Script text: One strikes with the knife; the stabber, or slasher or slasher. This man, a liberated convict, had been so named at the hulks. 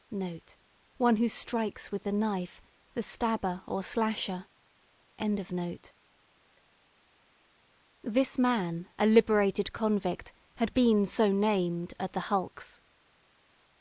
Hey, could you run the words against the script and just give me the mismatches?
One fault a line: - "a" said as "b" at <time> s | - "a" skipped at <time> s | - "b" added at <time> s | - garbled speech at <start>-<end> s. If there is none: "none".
- "who" added at 1.2 s
- "or slasher" skipped at 4.5 s